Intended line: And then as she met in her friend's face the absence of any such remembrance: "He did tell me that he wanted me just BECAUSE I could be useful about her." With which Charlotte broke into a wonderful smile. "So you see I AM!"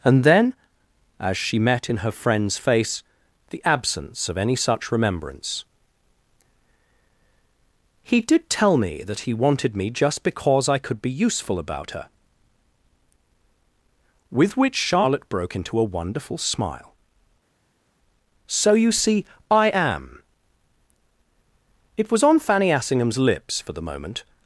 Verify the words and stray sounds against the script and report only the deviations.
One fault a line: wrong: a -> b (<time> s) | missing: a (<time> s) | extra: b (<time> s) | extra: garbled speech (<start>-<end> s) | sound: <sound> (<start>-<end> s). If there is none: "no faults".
extra: It was on Fanny Assingham's lips for the moment (22.0 s)